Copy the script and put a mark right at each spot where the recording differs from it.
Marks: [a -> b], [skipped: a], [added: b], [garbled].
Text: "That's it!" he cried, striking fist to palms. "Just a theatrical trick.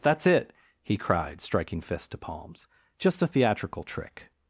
"That's it!" he cried, striking fist to palms. "Just a theatrical trick.